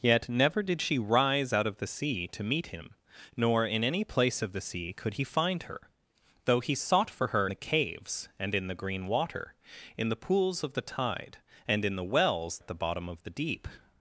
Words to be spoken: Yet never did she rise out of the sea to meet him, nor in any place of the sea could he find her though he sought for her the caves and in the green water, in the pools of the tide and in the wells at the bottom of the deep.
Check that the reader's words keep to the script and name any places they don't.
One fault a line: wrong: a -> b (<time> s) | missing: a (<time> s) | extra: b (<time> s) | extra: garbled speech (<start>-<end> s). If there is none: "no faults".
no faults